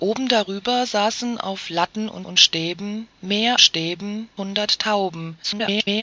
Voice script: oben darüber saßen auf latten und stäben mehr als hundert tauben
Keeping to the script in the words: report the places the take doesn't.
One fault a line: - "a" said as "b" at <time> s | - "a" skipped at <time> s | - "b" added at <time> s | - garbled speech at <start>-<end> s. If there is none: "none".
- "und" added at 2.2 s
- "als" said as "stäben" at 3.6 s
- garbled speech at 5.4-6.0 s